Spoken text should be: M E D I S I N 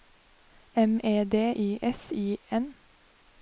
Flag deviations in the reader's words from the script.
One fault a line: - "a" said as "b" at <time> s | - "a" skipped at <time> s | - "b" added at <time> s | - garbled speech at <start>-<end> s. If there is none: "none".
none